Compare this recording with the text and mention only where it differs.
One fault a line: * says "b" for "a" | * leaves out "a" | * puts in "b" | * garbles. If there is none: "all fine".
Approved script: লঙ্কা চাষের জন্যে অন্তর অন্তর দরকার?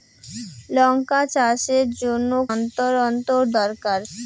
all fine